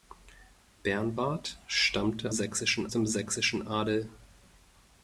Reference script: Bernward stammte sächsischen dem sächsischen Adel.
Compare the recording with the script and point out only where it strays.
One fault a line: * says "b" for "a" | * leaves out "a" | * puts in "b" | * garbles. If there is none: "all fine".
all fine